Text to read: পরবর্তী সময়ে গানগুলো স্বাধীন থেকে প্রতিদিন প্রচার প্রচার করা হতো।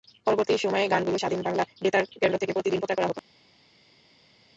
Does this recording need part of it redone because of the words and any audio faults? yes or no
yes